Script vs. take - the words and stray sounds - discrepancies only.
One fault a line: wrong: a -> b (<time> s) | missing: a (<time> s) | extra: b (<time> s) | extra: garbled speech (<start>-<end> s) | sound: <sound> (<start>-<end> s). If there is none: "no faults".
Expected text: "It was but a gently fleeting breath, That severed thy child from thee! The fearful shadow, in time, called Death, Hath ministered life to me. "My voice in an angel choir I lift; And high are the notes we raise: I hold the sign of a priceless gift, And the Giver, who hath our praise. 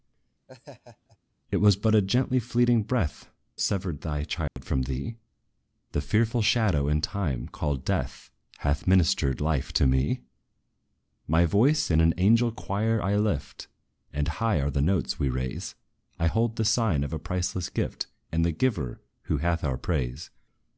sound: laugh (0.5-1.2 s)
missing: That (3.3 s)
sound: dropout (4.5-4.6 s)